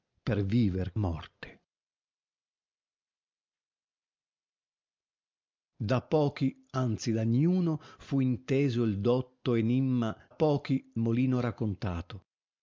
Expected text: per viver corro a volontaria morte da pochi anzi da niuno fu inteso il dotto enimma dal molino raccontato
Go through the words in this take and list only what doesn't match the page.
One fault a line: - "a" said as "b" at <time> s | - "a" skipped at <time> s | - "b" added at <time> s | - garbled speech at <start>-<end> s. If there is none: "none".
- "corro a volontaria" skipped at 0.9 s
- "dal" said as "pochi" at 10.3 s